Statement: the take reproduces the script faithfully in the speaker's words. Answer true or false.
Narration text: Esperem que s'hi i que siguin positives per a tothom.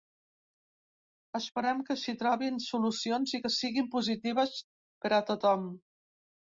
false